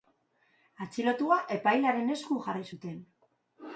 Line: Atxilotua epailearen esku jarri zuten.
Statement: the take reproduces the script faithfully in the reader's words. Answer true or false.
true